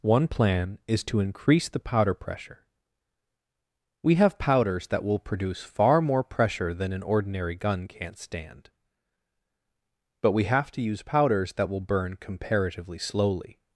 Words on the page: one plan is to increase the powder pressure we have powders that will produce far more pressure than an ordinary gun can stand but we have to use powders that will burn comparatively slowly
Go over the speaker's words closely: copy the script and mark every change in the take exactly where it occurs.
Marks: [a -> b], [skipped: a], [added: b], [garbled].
one plan is to increase the powder pressure we have powders that will produce far more pressure than an ordinary gun [can -> can't] stand but we have to use powders that will burn comparatively slowly